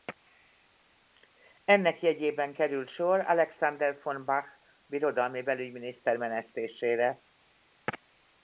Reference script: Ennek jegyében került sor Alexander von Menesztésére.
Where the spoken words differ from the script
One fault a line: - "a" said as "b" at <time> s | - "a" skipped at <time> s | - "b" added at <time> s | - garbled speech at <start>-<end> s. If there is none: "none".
- "Bach birodalmi belügyminiszter" added at 4.2 s